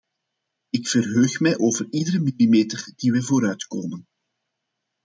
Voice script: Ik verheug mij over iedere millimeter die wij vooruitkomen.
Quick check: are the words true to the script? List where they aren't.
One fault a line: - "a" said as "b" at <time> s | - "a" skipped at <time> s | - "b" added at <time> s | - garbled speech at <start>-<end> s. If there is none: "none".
none